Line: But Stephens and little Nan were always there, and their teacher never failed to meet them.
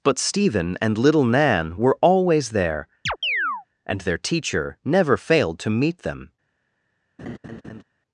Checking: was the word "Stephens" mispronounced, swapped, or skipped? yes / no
yes